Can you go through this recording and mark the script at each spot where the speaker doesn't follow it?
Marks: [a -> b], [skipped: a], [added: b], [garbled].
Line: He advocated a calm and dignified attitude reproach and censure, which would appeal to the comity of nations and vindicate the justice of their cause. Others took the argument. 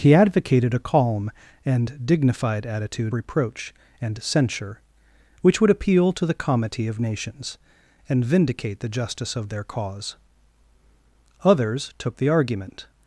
He advocated a calm and dignified attitude reproach and censure, which would appeal to the comity of nations and vindicate the justice of their cause. Others took the argument.